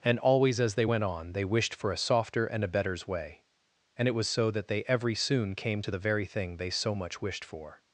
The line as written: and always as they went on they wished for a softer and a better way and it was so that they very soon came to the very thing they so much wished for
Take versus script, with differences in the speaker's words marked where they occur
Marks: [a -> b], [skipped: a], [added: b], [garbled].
and always as they went on they wished for a softer and a [better -> betters] way and it was so that they [very -> every] soon came to the very thing they so much wished for